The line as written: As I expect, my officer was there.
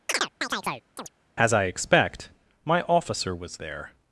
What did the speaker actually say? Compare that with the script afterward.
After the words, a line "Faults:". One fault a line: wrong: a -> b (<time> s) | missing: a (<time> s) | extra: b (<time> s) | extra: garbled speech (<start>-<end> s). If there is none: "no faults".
As I expect, my officer was there.
Faults:
no faults